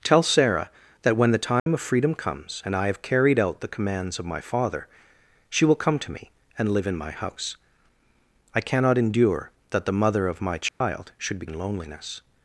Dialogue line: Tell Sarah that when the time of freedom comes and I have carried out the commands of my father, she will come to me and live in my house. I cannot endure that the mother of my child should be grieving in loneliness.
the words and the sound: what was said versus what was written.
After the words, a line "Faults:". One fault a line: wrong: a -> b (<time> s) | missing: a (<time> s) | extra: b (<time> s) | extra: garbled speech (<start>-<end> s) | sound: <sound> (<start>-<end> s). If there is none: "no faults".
Tell Sarah that when the time of freedom comes and I have carried out the commands of my father, she will come to me and live in my house. I cannot endure that the mother of my child should be in loneliness.
Faults:
sound: dropout (1.6-1.7 s)
sound: dropout (10.7-10.8 s)
missing: grieving (11.4 s)